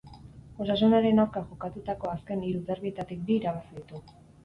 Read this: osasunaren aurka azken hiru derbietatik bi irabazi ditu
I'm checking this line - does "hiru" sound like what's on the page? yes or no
yes